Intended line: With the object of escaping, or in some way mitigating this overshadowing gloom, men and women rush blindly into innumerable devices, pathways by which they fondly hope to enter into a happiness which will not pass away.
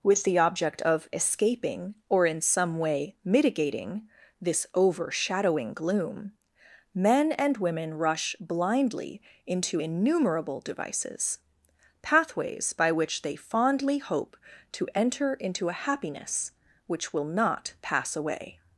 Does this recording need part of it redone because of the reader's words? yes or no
no